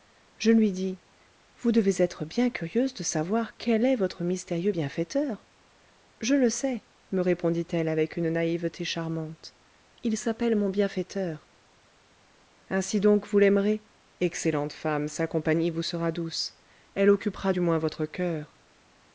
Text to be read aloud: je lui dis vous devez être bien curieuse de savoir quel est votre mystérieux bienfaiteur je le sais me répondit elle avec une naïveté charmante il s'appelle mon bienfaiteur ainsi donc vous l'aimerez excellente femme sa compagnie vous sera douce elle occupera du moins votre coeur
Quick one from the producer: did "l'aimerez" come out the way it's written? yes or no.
yes